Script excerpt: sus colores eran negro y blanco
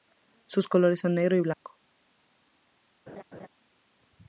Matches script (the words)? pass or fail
fail